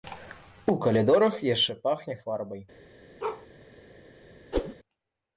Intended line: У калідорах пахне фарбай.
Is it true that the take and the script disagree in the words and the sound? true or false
true